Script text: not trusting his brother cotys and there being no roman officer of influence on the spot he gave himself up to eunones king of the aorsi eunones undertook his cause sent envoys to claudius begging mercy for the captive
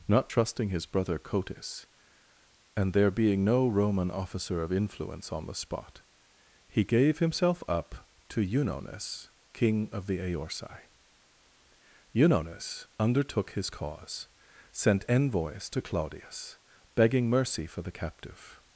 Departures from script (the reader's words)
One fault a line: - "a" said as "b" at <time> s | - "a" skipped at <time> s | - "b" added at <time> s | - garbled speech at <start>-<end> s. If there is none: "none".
none